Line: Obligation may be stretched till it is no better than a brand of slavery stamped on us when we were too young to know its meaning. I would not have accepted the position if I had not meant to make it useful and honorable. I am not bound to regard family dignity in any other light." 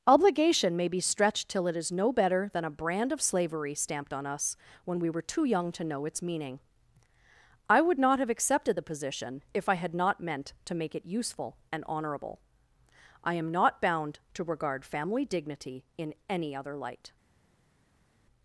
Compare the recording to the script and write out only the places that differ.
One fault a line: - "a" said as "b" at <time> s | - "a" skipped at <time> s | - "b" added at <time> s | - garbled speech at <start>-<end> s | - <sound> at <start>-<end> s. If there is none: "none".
none